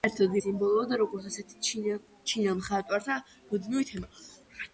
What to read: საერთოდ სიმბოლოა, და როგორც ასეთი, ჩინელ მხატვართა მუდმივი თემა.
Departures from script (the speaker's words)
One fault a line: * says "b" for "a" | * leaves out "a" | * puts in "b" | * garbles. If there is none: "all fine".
all fine